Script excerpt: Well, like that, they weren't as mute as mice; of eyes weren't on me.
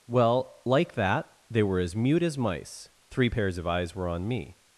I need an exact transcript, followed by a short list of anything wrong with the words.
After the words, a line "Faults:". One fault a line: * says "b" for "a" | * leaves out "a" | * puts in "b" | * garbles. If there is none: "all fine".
Well, like that, they were as mute as mice; three pairs of eyes were on me.
Faults:
* says "were" for "weren't"
* puts in "three pairs"
* says "were" for "weren't"